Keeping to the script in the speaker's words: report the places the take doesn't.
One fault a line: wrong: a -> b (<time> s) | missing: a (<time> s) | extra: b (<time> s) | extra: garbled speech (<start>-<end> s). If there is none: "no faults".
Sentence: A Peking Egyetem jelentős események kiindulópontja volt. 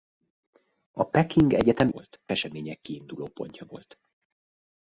wrong: jelentős -> volt (1.9 s)